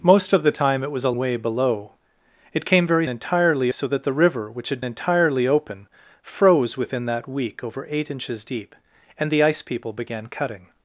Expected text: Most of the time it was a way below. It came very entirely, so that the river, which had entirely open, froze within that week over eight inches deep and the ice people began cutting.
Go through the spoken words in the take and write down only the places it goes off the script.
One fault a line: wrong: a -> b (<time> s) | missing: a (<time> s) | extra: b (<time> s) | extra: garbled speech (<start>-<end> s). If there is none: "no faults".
no faults